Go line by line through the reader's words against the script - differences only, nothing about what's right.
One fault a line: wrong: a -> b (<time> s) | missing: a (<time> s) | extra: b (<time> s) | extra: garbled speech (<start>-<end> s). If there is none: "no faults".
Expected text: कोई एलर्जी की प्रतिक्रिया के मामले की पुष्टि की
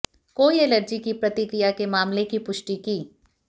no faults